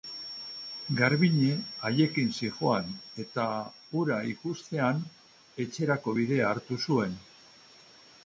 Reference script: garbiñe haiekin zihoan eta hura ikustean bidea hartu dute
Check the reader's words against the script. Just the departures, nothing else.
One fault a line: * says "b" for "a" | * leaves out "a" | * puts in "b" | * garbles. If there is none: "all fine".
* puts in "etxerako"
* says "zuen" for "dute"